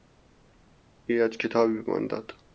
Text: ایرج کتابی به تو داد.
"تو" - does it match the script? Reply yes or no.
no